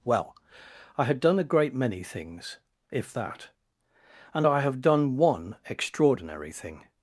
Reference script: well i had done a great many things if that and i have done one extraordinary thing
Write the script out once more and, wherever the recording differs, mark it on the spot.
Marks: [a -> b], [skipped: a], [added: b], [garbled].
well i had done a great many things if that and i have done one extraordinary thing